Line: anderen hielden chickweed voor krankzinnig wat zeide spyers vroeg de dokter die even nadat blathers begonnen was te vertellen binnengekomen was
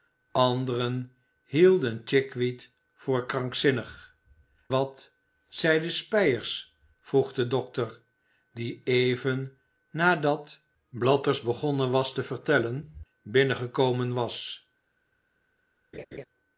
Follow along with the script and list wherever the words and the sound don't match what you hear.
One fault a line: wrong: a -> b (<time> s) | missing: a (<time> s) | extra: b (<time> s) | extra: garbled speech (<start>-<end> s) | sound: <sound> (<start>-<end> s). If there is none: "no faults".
sound: laugh (15.9-16.3 s)